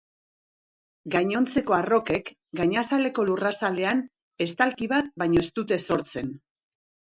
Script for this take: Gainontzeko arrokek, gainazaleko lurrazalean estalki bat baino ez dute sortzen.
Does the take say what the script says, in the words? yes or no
yes